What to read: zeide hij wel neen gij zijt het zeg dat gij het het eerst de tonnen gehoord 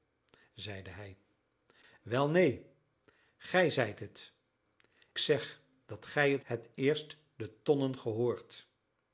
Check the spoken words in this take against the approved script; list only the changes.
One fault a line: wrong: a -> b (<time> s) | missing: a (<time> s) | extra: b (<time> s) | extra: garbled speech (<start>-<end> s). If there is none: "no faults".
no faults